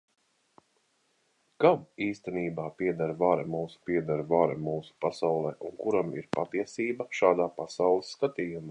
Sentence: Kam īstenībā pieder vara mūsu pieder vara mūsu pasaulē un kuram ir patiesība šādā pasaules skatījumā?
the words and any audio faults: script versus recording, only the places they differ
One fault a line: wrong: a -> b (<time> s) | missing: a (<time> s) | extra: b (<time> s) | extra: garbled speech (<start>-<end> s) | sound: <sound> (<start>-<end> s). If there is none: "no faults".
no faults